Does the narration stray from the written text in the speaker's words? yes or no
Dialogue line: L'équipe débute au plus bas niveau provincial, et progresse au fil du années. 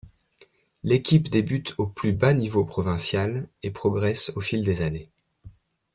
yes